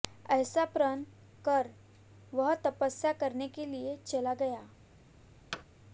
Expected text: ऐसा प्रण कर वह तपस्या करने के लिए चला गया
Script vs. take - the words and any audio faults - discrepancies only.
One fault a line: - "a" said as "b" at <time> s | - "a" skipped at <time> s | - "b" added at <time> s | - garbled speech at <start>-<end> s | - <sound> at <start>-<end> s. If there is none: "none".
- thud at 5.5-5.6 s